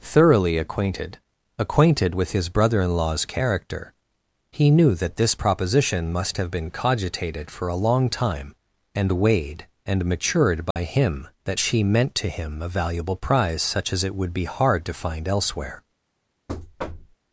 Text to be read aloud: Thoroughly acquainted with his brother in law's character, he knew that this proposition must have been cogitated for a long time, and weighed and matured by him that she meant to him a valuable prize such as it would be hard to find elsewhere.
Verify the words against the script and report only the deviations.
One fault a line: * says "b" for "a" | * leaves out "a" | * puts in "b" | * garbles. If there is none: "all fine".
* puts in "acquainted"